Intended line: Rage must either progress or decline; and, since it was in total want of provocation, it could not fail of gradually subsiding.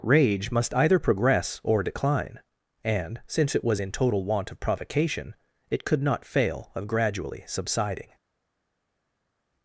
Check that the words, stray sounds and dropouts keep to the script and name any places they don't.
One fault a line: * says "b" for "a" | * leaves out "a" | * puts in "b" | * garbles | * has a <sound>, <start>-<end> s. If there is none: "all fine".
all fine